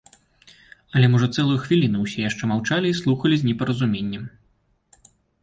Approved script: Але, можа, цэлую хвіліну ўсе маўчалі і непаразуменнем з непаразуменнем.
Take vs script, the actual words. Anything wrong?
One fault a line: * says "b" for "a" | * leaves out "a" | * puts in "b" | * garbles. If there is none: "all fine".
* puts in "яшчэ"
* says "слухалі" for "непаразуменнем"